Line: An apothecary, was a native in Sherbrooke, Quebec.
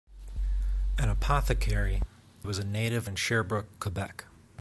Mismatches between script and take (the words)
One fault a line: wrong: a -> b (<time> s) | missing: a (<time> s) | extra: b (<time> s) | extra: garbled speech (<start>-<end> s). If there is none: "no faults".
no faults